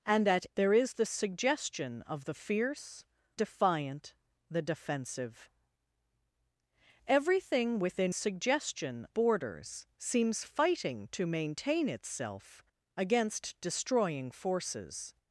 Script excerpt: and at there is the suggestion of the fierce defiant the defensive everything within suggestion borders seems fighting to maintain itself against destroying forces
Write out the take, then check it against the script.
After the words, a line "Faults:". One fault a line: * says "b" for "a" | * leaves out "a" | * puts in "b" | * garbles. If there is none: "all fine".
and at there is the suggestion of the fierce defiant the defensive everything within suggestion borders seems fighting to maintain itself against destroying forces
Faults:
all fine